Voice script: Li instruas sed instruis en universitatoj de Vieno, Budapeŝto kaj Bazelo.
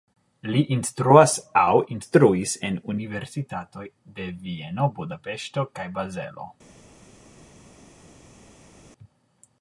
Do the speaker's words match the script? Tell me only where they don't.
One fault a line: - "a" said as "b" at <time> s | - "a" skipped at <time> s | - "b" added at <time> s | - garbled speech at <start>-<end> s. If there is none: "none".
- "sed" said as "aŭ" at 1.6 s